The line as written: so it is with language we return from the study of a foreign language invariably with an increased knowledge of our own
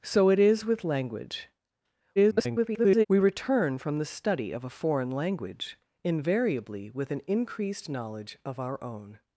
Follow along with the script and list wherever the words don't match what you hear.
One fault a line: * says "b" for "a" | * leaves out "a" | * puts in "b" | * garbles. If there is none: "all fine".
* garbles